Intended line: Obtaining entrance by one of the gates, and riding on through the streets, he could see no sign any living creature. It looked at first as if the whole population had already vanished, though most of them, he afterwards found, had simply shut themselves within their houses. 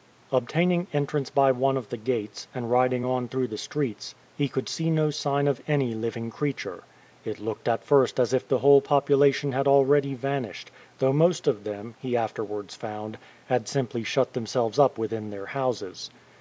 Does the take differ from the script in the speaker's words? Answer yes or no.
yes